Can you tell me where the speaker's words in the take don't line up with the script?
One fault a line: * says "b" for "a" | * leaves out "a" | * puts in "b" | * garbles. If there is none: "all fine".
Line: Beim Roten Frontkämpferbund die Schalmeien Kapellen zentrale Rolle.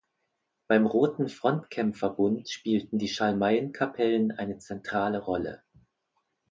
* puts in "spielten"
* puts in "eine"